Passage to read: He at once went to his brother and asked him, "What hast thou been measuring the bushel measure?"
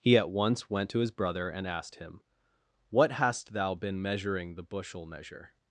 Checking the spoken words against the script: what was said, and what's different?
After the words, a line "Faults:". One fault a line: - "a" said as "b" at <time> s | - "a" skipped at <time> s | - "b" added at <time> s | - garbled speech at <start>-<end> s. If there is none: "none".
He at once went to his brother and asked him, "What hast thou been measuring the bushel measure?"
Faults:
none